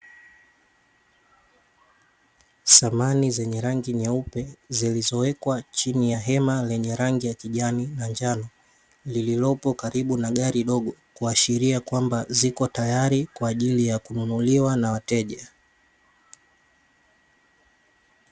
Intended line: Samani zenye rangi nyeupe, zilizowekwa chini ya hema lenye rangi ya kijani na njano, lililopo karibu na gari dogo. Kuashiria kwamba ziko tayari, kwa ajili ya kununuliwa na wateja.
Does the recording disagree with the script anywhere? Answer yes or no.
no